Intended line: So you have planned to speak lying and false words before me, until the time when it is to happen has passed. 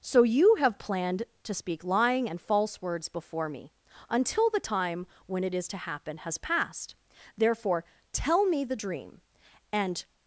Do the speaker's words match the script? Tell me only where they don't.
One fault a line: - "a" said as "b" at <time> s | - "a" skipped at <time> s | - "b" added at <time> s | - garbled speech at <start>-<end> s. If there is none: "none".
- "Therefore tell me the dream and" added at 7.4 s